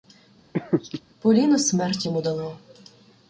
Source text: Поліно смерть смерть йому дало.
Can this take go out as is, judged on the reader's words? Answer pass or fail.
fail